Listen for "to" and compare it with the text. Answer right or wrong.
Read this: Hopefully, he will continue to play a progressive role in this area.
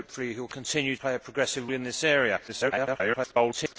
wrong